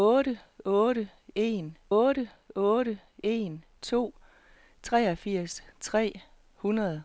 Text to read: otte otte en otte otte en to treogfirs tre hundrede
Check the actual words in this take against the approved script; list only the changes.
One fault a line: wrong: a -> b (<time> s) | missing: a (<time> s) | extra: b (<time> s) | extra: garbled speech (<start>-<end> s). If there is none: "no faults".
no faults